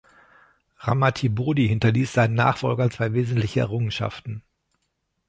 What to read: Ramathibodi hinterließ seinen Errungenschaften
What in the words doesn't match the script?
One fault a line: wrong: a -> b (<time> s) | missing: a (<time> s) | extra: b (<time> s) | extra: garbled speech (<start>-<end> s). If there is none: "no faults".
extra: Nachfolgern zwei wesentliche (2.3 s)